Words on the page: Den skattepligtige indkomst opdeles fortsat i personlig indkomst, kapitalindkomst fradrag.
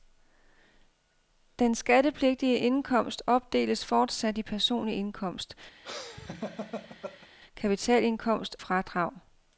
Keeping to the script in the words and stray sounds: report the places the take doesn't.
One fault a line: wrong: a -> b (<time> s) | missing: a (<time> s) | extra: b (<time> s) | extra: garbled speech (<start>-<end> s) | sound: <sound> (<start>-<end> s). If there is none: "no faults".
sound: laugh (5.8-7.3 s)